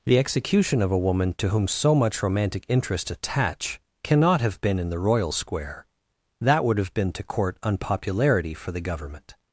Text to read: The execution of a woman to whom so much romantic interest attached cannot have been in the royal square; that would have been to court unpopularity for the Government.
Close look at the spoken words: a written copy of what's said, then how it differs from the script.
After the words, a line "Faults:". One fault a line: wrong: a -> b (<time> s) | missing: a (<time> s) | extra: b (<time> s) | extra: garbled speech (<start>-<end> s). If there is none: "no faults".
The execution of a woman to whom so much romantic interest attach cannot have been in the royal square; that would have been to court unpopularity for the Government.
Faults:
wrong: attached -> attach (3.1 s)